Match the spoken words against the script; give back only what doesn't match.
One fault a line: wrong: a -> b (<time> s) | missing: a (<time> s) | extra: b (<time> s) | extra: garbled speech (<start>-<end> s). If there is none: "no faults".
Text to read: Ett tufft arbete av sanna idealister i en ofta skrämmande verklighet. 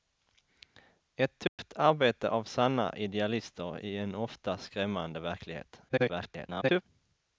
extra: garbled speech (5.9-6.8 s)